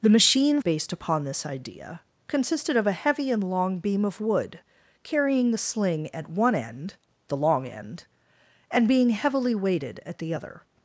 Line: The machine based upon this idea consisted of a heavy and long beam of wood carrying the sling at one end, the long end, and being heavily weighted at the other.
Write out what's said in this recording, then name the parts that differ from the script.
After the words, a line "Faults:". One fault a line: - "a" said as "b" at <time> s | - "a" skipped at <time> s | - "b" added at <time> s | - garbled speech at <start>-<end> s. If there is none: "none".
The machine based upon this idea consisted of a heavy and long beam of wood carrying the sling at one end, the long end, and being heavily weighted at the other.
Faults:
none